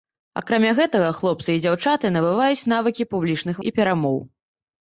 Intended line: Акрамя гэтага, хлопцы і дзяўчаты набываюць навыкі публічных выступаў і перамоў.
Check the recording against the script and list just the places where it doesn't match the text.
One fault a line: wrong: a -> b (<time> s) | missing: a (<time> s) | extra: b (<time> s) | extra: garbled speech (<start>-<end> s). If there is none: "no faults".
missing: выступаў (3.6 s)